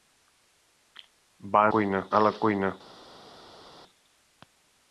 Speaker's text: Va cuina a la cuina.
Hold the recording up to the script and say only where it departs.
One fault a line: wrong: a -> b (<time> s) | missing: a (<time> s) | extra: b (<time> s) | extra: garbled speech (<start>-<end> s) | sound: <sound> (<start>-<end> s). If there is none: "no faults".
no faults